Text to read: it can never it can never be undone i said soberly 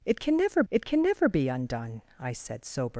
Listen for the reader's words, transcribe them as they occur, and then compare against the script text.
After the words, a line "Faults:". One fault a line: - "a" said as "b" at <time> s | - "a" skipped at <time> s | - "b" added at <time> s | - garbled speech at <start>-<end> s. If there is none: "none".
it can never it can never be undone i said soberly
Faults:
none